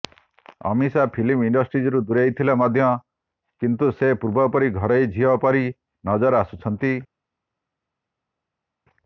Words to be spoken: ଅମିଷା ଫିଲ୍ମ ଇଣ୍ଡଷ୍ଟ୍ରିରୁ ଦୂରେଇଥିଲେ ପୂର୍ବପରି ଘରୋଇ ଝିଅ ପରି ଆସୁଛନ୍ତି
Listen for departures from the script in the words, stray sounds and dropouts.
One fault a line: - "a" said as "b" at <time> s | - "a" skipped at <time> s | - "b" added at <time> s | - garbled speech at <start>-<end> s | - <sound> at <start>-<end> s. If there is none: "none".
- "ମଧ୍ୟ କିନ୍ତୁ ସେ" added at 2.6 s
- "ନଜର" added at 6.0 s